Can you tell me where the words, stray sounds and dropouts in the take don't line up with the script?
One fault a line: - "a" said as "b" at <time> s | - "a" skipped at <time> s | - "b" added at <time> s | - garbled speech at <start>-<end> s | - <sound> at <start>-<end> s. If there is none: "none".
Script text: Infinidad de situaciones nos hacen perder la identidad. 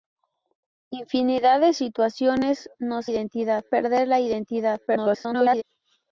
- "hacen" said as "identidad" at 3.1 s
- garbled speech at 4.9-5.6 s